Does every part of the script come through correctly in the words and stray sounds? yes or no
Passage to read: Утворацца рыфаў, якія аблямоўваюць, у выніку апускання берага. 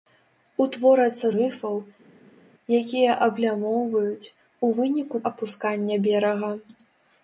yes